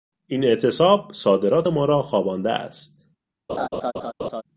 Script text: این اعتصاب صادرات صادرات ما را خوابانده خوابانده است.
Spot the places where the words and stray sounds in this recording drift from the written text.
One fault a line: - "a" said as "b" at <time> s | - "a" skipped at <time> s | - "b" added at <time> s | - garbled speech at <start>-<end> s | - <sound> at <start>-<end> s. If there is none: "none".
- "صادرات" skipped at 1.7 s
- "خوابانده" skipped at 2.5 s
- laugh at 3.5-4.4 s